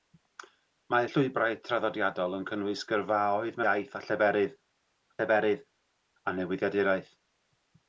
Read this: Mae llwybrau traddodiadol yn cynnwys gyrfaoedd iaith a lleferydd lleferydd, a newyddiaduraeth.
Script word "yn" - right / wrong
right